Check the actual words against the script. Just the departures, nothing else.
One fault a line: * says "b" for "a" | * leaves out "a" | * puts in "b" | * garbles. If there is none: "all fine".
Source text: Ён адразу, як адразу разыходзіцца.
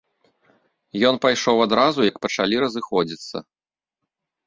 * puts in "пайшоў"
* says "пачалі" for "адразу"